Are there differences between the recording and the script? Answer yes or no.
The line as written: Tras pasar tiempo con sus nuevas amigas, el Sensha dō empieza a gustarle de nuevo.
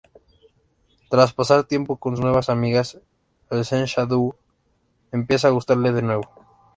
yes